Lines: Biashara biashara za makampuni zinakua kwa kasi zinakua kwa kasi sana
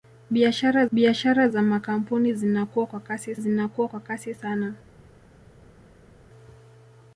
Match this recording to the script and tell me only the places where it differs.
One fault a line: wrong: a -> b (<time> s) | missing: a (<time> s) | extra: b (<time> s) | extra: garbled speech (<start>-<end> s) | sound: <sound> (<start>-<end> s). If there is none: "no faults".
no faults